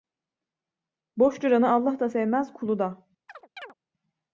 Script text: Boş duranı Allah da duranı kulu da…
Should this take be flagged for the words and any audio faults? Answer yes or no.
yes